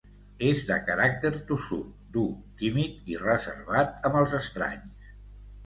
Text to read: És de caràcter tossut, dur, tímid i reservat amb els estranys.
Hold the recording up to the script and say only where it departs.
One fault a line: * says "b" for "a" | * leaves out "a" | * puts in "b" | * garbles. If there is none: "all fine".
all fine